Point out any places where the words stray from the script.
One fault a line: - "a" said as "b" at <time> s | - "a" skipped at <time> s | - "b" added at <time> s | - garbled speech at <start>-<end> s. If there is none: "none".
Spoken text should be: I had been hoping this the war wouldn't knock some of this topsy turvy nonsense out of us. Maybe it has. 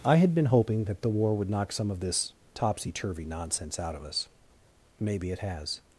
- "this" said as "that" at 0.9 s
- "wouldn't" said as "would" at 1.4 s